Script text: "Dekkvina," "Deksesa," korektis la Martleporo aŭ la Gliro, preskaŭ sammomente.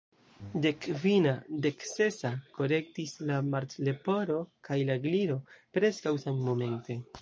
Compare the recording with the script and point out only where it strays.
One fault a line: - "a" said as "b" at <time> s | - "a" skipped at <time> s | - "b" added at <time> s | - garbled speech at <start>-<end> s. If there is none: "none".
- "aŭ" said as "kaj" at 4.7 s